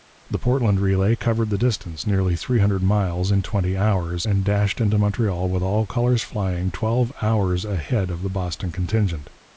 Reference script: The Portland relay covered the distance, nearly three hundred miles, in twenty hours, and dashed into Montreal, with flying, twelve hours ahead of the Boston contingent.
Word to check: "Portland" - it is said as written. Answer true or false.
true